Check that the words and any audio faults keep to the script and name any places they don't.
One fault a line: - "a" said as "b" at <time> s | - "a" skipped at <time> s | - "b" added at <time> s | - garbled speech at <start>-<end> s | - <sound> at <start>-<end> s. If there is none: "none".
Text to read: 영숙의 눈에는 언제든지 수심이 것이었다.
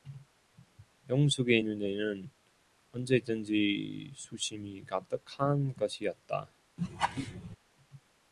- "가득한" added at 4.8 s
- laugh at 6.8-7.6 s